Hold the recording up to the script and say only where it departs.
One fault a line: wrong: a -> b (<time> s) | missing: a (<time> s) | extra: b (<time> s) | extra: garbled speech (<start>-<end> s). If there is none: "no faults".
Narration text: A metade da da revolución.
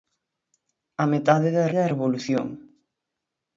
no faults